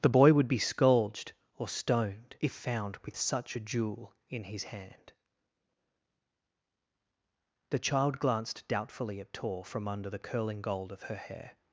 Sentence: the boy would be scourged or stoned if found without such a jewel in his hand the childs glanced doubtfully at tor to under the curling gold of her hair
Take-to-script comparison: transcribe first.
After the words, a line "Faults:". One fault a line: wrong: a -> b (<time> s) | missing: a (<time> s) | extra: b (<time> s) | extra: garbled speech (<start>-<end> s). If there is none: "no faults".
the boy would be scourged or stoned if found with such a jewel in his hand the child glanced doubtfully at tor from under the curling gold of her hair
Faults:
wrong: without -> with (3.0 s)
wrong: childs -> child (7.8 s)
wrong: to -> from (9.6 s)